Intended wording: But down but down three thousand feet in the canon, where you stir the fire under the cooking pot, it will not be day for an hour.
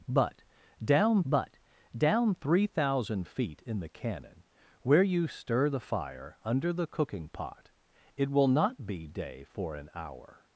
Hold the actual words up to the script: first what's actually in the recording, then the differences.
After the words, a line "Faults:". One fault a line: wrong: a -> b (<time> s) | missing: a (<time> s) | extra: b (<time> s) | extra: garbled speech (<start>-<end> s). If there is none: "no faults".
But down but down three thousand feet in the canon, where you stir the fire under the cooking pot, it will not be day for an hour.
Faults:
no faults